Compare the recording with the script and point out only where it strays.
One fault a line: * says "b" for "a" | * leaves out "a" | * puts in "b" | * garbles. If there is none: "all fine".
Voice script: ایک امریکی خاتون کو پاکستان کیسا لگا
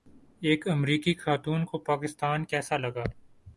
all fine